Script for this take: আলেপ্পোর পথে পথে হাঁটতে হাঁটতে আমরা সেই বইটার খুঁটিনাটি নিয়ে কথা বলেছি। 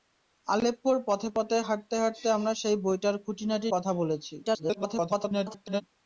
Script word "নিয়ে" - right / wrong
wrong